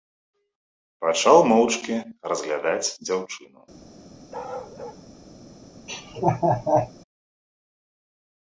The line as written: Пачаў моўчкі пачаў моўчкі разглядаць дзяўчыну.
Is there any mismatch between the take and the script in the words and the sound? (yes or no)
yes